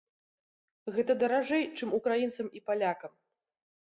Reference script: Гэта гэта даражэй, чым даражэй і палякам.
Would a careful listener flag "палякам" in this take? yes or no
no